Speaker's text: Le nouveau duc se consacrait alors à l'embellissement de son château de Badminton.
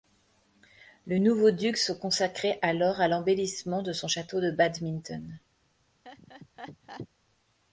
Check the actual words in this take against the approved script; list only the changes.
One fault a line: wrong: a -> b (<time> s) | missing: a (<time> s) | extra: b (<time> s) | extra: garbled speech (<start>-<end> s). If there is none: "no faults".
no faults